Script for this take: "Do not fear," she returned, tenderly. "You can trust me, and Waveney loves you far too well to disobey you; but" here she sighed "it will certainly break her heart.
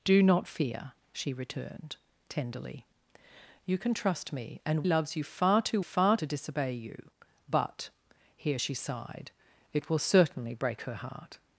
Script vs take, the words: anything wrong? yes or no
yes